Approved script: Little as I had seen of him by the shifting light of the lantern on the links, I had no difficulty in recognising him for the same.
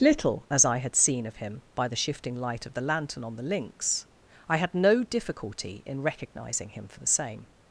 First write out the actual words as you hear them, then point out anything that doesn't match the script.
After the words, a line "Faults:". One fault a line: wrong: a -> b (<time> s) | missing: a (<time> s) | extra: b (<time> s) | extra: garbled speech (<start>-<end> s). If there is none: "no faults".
Little as I had seen of him by the shifting light of the lantern on the links, I had no difficulty in recognising him for the same.
Faults:
no faults